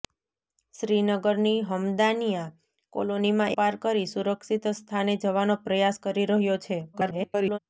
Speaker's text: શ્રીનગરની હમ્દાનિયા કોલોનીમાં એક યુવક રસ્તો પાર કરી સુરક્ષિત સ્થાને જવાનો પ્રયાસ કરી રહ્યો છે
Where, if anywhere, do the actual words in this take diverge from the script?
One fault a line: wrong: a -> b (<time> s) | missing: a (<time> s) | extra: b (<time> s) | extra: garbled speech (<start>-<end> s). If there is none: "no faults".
missing: એક યુવક રસ્તો (3.5 s)
extra: garbled speech (6.9-7.6 s)